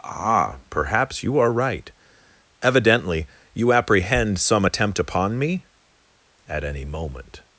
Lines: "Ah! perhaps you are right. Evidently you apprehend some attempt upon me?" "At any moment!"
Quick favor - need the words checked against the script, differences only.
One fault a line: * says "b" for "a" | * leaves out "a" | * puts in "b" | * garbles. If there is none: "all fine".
all fine